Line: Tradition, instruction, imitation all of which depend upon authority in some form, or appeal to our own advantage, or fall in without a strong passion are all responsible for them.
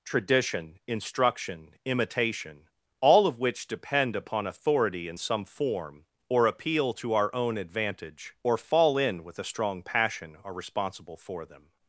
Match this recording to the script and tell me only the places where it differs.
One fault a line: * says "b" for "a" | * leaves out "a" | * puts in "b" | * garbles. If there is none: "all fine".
* says "with" for "without"
* leaves out "all"